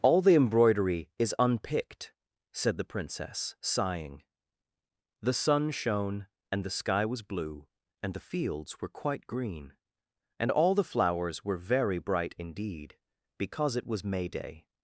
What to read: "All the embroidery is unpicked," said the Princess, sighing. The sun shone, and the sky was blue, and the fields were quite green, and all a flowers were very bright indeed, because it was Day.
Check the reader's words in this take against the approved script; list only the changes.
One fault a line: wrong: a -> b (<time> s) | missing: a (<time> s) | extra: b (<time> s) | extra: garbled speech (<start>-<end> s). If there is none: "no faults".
wrong: a -> the (10.7 s)
extra: May (14.0 s)